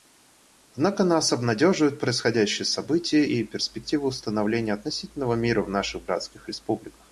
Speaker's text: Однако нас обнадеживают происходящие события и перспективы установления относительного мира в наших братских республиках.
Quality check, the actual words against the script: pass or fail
pass